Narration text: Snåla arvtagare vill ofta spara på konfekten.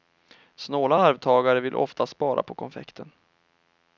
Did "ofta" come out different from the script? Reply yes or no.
no